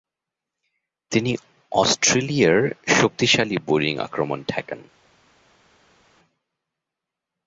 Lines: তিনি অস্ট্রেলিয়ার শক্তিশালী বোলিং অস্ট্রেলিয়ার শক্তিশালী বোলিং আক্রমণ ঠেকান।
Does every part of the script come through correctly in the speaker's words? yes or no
no